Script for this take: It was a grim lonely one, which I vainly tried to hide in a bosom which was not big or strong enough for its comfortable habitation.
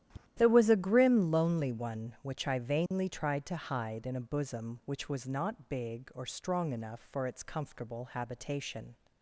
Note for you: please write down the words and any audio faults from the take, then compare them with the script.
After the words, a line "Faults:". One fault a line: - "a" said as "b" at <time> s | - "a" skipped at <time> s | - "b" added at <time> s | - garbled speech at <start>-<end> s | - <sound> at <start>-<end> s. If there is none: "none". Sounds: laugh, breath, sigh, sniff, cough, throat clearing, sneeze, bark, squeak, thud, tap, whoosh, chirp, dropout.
There was a grim lonely one, which I vainly tried to hide in a bosom which was not big or strong enough for its comfortable habitation.
Faults:
- tap at 0.1-0.3 s
- "It" said as "There" at 0.4 s
- dropout at 2.9-2.9 s